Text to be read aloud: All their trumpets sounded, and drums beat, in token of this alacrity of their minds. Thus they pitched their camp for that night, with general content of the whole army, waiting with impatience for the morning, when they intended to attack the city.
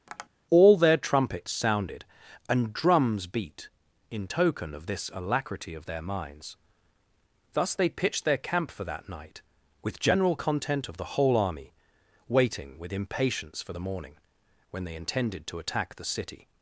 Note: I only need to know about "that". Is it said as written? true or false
true